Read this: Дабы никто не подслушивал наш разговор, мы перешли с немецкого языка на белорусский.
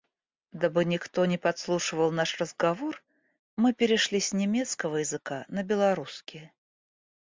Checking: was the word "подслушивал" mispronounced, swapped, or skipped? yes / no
no